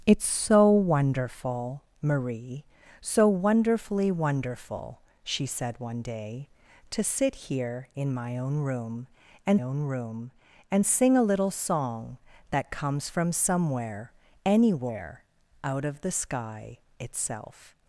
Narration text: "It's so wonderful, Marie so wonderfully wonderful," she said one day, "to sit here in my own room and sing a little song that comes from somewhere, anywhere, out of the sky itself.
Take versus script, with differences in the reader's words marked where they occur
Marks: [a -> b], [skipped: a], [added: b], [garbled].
"It's so wonderful, Marie so wonderfully wonderful," she said one day, "to sit here in my own room and [added: own room and] sing a little song that comes from somewhere, anywhere, out of the sky itself.